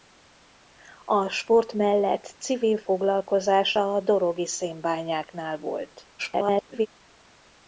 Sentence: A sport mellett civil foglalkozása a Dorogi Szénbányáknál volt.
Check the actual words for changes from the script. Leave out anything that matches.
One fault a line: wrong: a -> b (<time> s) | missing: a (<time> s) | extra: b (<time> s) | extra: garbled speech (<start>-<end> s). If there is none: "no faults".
extra: garbled speech (6.2-6.9 s)